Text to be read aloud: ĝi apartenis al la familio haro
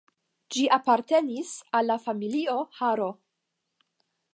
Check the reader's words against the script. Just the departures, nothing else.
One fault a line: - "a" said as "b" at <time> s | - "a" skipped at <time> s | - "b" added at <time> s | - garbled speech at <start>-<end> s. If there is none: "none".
none